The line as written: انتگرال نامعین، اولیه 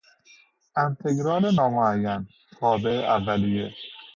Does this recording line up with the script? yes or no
no